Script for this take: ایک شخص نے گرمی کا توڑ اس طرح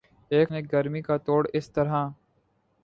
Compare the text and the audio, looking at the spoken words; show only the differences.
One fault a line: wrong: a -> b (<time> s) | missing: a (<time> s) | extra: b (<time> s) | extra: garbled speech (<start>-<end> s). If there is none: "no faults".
missing: شخص (0.5 s)